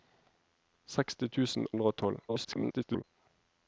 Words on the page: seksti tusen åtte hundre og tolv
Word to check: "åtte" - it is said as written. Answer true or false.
false